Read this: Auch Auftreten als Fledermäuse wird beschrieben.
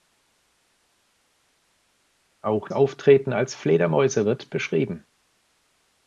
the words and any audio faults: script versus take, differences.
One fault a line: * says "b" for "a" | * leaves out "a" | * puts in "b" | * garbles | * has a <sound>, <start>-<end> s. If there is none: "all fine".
all fine